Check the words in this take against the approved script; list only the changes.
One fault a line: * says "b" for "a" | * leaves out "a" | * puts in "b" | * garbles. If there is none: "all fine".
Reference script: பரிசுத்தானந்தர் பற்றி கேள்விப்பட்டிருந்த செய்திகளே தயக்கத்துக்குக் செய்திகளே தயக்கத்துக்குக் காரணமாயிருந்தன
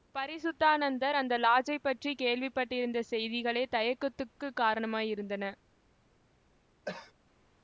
* puts in "அந்த லாட்ஜைப்"
* leaves out "செய்திகளே தயக்கத்துக்குக்"